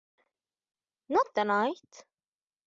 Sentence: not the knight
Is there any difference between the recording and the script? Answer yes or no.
no